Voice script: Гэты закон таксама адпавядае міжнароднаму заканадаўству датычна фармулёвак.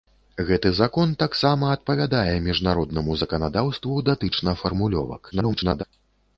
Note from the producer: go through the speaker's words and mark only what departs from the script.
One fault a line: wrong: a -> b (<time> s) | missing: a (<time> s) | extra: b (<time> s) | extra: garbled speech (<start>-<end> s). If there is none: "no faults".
extra: garbled speech (5.3-5.8 s)